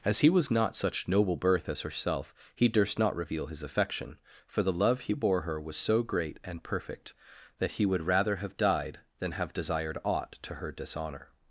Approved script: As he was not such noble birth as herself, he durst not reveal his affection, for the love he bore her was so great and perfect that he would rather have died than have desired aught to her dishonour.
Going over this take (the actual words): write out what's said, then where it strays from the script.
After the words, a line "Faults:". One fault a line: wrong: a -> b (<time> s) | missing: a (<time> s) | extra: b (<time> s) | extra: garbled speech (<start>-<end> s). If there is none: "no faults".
As he was not such noble birth as herself, he durst not reveal his affection, for the love he bore her was so great and perfect that he would rather have died than have desired aught to her dishonour.
Faults:
no faults